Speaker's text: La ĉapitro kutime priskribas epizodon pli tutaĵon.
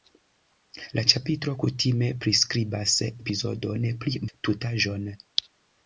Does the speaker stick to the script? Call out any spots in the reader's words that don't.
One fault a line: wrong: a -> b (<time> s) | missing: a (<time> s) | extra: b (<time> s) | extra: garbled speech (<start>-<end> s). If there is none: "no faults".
no faults